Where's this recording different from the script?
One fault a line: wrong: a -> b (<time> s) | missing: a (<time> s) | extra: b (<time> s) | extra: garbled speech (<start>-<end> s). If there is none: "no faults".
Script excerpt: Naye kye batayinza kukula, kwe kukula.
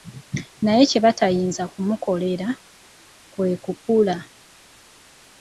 wrong: kukula -> kumukolera (1.7 s)